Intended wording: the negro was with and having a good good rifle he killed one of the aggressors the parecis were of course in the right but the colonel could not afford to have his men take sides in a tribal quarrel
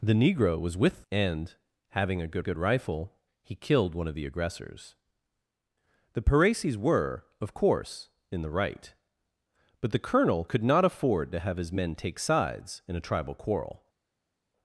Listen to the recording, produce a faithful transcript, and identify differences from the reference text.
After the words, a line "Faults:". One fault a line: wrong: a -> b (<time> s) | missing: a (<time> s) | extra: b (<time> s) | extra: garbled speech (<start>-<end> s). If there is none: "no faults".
the negro was with and having a good good rifle he killed one of the aggressors the parecis were of course in the right but the colonel could not afford to have his men take sides in a tribal quarrel
Faults:
no faults